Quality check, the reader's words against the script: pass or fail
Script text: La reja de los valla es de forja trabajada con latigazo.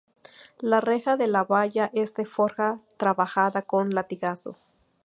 fail